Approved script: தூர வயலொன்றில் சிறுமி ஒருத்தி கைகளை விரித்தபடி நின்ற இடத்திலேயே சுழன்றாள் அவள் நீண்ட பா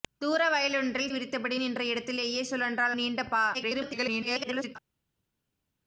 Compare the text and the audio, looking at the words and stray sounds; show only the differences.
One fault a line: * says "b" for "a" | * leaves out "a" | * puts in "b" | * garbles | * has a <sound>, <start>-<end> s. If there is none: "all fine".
* leaves out "சிறுமி ஒருத்தி கைகளை"
* leaves out "அவள்"
* garbles